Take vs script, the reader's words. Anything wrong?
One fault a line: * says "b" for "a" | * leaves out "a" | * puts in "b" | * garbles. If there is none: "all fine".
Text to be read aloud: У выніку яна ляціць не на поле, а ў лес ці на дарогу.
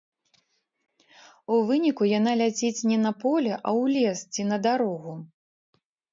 all fine